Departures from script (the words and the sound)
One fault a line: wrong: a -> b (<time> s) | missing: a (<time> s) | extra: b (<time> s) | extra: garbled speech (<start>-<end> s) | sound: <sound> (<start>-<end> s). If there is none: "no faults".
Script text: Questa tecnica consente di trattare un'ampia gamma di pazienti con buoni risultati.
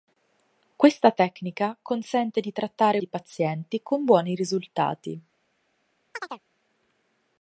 missing: un'ampia gamma (3.0 s)
sound: chirp (6.1-6.4 s)